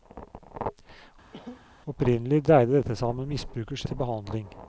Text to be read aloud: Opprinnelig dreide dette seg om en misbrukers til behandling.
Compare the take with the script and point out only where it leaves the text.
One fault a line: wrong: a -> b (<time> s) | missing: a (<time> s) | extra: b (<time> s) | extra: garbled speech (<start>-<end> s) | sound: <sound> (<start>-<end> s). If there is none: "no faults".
sound: cough (1.3-1.6 s)